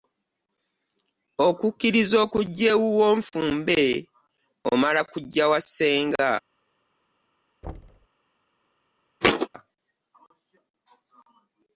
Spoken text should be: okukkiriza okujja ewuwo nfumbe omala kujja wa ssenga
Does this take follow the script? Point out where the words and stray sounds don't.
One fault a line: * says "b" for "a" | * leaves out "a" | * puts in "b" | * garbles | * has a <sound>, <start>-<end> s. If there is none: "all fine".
* has a thud, 7.6-8.1 s
* has a thud, 9.2-9.5 s